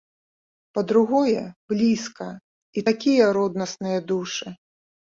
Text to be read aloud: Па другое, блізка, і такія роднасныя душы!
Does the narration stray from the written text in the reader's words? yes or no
no